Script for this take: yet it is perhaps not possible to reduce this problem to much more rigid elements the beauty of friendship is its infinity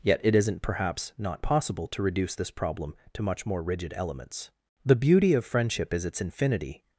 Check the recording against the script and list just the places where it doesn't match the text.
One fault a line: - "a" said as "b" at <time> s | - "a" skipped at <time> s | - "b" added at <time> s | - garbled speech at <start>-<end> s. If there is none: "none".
- "is" said as "isn't" at 0.3 s